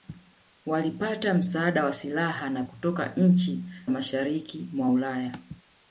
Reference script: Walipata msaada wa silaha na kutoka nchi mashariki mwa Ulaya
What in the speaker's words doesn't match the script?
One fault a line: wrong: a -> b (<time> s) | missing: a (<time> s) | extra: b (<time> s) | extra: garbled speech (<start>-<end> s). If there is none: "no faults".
no faults